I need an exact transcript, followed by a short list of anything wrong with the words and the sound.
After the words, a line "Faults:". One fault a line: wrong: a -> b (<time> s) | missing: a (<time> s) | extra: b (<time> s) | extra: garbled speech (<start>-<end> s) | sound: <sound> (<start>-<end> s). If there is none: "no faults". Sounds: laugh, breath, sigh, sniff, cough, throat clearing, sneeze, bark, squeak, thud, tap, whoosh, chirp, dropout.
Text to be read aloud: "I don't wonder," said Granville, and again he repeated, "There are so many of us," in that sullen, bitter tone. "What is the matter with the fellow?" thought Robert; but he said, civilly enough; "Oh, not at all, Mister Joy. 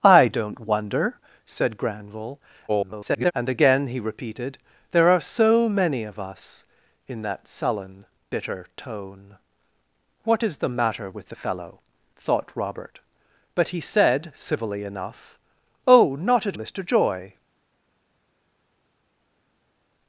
"I don't wonder," said Granville, [garbled] and again he repeated, "There are so many of us," in that sullen, bitter tone. "What is the matter with the fellow?" thought Robert; but he said, civilly enough; "Oh, not at Mister Joy.
Faults:
extra: garbled speech (2.7-3.3 s)
missing: all (16.6 s)